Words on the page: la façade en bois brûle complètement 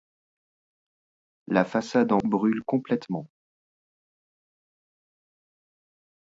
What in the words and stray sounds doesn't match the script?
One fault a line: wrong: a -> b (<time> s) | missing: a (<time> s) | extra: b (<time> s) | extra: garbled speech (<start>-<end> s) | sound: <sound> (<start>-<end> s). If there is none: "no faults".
missing: bois (2.2 s)